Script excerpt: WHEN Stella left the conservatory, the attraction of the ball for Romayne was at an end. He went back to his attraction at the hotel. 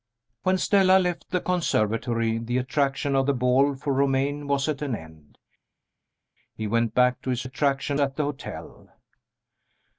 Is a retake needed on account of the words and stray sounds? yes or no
no